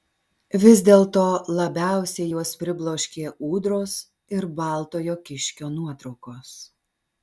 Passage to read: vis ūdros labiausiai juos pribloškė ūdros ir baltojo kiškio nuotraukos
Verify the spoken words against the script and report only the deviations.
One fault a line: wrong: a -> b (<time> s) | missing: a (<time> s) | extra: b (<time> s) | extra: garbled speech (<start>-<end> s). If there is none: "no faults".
wrong: ūdros -> dėlto (0.9 s)